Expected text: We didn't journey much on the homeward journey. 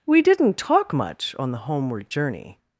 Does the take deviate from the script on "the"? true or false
false